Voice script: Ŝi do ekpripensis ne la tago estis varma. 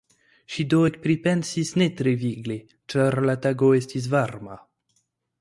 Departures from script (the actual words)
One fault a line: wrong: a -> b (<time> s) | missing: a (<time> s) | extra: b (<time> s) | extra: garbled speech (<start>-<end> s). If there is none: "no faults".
extra: tre vigle ĉar (2.0 s)